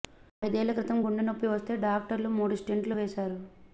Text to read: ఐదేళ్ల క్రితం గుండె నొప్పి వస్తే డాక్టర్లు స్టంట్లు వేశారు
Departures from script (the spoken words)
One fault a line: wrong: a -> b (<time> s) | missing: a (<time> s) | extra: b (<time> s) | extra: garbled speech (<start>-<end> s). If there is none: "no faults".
extra: మూడు (2.4 s)